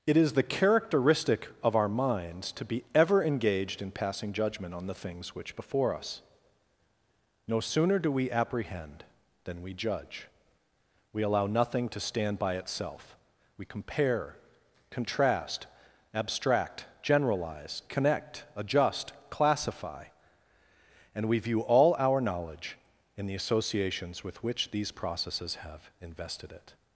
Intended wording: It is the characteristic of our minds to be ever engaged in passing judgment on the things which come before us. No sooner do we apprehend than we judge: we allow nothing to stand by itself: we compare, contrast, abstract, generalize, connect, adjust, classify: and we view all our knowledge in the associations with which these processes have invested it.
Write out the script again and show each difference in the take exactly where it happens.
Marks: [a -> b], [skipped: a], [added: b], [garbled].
It is the characteristic of our minds to be ever engaged in passing judgment on the things which [skipped: come] before us. No sooner do we apprehend than we judge: we allow nothing to stand by itself: we compare, contrast, abstract, generalize, connect, adjust, classify: and we view all our knowledge in the associations with which these processes have invested it.